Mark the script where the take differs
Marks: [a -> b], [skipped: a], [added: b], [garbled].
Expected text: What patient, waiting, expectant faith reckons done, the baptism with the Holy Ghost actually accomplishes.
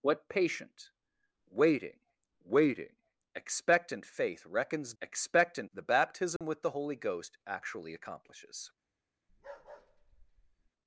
What patient, waiting, [added: waiting] expectant faith reckons [done, -> expectant] the baptism with the Holy Ghost actually accomplishes.